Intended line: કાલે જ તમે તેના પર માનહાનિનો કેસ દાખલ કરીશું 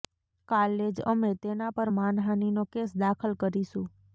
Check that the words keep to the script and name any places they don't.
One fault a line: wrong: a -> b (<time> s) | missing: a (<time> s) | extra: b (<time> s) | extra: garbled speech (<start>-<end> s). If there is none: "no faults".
wrong: તમે -> અમે (1.1 s)